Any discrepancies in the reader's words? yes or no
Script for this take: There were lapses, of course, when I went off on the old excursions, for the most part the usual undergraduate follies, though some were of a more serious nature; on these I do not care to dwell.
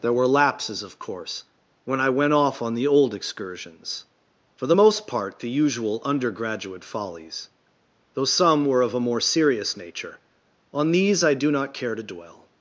no